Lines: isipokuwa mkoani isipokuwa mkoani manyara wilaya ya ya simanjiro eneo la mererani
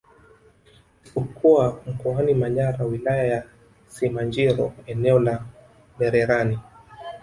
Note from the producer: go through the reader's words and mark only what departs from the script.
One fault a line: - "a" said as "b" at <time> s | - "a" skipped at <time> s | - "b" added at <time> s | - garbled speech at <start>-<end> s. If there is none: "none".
- "isipokuwa mkoani" skipped at 2.3 s
- "ya" skipped at 3.4 s